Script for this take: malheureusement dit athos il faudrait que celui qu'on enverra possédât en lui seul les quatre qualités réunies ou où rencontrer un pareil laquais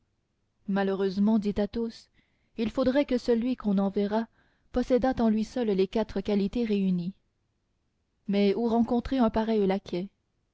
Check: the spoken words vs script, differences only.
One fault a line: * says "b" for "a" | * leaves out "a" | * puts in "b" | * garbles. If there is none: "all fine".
* says "mais" for "ou"